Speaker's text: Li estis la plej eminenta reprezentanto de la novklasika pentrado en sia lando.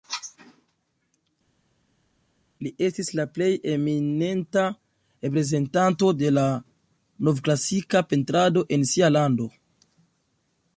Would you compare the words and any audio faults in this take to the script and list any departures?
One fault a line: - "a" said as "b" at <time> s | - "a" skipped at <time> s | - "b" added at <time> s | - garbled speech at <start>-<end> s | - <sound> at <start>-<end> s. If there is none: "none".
none